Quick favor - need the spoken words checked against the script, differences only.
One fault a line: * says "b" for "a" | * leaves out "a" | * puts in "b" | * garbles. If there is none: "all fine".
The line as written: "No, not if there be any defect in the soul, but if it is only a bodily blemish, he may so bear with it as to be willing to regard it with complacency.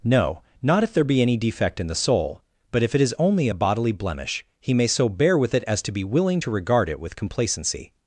all fine